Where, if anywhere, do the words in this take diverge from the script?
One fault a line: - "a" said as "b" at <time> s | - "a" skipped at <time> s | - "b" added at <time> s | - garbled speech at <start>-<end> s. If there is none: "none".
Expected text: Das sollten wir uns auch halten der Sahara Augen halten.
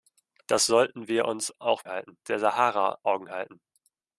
none